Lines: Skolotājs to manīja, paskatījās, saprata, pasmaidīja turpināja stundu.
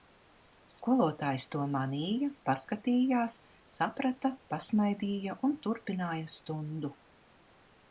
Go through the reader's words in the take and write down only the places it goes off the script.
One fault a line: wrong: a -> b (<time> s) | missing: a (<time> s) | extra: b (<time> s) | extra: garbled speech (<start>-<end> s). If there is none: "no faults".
extra: un (5.5 s)